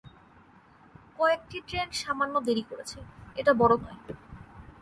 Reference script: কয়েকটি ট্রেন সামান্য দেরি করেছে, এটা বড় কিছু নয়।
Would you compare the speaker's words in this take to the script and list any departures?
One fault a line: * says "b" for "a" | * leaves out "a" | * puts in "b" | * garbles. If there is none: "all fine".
* leaves out "কিছু"